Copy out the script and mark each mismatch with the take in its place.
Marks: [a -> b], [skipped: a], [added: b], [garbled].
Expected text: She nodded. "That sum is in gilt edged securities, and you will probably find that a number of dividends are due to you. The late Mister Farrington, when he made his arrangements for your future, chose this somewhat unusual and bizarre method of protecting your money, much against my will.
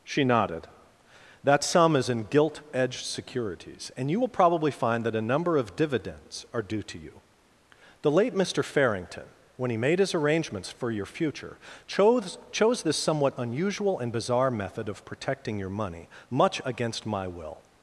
She nodded. "That sum is in gilt edged securities, and you will probably find that a number of dividends are due to you. The late Mister Farrington, when he made his arrangements for your future, chose [added: chose] this somewhat unusual and bizarre method of protecting your money, much against my will.